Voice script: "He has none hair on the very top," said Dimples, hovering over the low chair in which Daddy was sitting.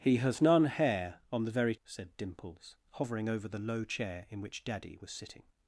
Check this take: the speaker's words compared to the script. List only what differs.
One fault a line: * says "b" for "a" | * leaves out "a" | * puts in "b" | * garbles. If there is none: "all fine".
* leaves out "top"